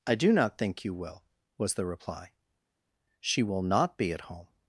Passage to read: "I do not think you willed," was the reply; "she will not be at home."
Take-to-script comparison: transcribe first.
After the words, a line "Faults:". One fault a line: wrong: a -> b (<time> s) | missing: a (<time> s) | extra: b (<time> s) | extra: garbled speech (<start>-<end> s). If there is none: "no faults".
"I do not think you will," was the reply; "she will not be at home."
Faults:
wrong: willed -> will (0.9 s)